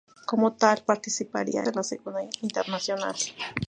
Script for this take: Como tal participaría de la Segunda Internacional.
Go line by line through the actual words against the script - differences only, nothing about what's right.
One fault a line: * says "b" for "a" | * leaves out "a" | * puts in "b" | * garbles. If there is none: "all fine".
all fine